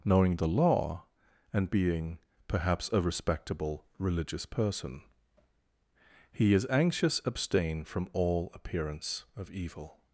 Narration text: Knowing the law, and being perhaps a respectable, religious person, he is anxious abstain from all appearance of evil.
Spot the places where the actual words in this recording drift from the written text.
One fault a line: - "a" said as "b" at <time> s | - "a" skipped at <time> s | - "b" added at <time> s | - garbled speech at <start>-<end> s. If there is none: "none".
none